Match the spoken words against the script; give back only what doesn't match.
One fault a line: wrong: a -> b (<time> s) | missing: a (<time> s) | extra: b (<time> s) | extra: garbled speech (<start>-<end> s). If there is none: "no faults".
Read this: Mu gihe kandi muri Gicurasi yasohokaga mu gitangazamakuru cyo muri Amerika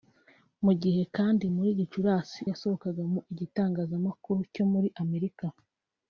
no faults